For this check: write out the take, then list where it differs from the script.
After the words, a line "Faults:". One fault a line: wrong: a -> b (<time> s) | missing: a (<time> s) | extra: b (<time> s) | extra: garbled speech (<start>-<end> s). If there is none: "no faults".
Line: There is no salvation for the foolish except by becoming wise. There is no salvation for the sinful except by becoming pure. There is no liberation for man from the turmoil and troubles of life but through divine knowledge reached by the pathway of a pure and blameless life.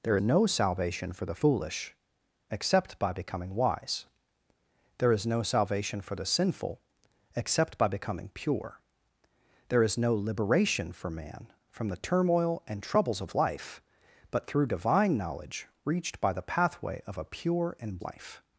There no salvation for the foolish except by becoming wise. There is no salvation for the sinful except by becoming pure. There is no liberation for man from the turmoil and troubles of life but through divine knowledge reached by the pathway of a pure and life.
Faults:
missing: is (0.2 s)
missing: blameless (18.0 s)